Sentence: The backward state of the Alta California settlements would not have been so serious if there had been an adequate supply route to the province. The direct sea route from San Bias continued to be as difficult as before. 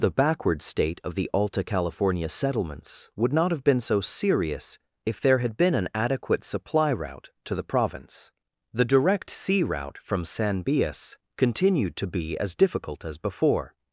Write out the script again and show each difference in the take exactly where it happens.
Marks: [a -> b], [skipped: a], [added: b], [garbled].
The backward state of the Alta California settlements would not have been so serious if there had been an adequate supply route to the province. The direct sea route from San Bias continued to be as difficult as before.